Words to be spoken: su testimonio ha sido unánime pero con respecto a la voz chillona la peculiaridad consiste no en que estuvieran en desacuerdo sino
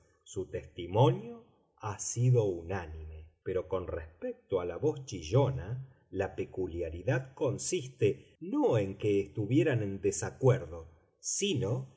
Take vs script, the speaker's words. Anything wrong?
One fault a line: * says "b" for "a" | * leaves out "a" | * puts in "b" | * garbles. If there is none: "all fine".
all fine